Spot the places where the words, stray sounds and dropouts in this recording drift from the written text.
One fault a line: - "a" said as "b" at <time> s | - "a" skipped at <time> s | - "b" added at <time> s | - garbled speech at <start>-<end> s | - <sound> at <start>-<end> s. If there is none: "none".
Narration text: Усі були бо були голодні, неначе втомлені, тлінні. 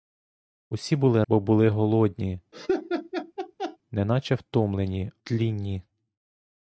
- laugh at 2.5-3.8 s